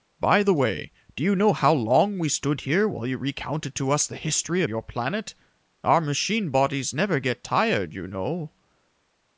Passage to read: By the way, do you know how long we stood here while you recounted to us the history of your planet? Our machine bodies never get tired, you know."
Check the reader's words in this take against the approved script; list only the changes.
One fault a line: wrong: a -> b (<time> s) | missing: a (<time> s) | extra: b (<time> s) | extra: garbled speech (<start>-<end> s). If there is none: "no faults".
missing: of (4.6 s)